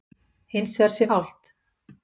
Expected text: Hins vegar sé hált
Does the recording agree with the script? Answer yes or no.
yes